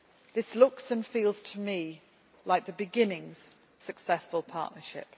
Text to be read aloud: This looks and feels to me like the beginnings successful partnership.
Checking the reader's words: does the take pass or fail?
pass